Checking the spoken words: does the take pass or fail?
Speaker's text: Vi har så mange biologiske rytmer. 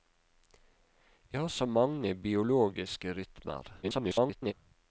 fail